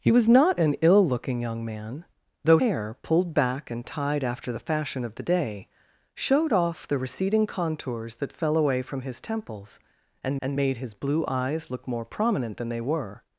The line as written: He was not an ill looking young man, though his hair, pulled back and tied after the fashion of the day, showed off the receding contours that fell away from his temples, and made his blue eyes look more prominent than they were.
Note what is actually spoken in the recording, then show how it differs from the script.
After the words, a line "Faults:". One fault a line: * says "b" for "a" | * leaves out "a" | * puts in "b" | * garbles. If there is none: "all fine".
He was not an ill looking young man, though hair, pulled back and tied after the fashion of the day, showed off the receding contours that fell away from his temples, and and made his blue eyes look more prominent than they were.
Faults:
* leaves out "his"
* puts in "and"